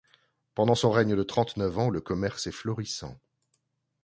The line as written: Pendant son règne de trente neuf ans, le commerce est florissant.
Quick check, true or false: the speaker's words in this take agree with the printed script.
true